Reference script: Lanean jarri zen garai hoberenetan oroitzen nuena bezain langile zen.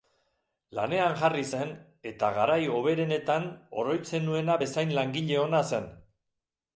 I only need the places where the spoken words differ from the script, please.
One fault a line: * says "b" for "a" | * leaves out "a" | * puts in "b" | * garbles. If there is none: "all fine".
* puts in "eta"
* puts in "ona"